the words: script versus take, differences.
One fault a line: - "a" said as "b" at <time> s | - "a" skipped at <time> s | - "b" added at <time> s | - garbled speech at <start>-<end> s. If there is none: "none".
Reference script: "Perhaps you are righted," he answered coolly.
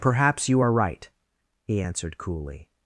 - "righted" said as "right" at 0.7 s